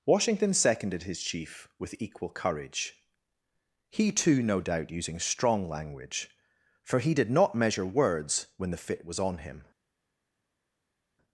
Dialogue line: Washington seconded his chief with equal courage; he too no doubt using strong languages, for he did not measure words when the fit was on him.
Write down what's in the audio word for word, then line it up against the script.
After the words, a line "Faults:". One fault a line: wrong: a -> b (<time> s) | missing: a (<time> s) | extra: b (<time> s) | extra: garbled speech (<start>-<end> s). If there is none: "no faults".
Washington seconded his chief with equal courage; he too no doubt using strong language, for he did not measure words when the fit was on him.
Faults:
wrong: languages -> language (5.7 s)